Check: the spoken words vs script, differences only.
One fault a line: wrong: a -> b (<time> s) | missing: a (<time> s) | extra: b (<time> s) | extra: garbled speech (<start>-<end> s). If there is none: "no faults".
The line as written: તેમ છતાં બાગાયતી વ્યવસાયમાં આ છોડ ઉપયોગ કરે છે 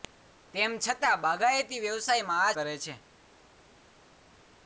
missing: છોડ ઉપયોગ (2.6 s)